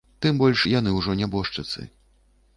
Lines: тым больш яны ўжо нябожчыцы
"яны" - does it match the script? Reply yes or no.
yes